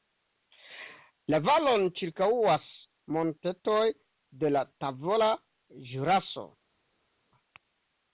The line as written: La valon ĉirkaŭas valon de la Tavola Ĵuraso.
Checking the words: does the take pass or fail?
fail